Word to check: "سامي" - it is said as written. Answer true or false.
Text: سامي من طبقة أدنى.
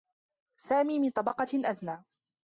true